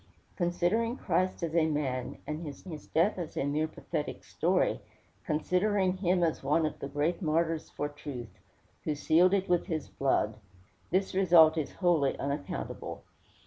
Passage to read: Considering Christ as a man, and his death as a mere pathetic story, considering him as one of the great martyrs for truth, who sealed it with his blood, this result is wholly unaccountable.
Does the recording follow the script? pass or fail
fail